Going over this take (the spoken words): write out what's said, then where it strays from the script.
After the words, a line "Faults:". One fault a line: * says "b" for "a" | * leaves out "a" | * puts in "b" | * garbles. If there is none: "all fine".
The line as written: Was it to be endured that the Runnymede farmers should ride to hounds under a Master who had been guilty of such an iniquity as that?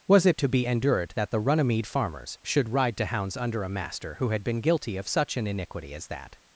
Was it to be endured that the Runnymede farmers should ride to hounds under a Master who had been guilty of such an iniquity as that?
Faults:
all fine